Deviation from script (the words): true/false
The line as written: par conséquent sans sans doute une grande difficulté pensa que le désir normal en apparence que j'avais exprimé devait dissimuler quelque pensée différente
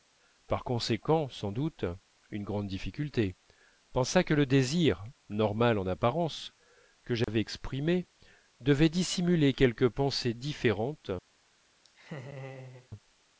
true